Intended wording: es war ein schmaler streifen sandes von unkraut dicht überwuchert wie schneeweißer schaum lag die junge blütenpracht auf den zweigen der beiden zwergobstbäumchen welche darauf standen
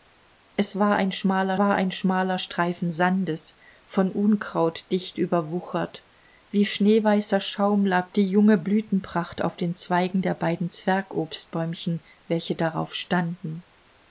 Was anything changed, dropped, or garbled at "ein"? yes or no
no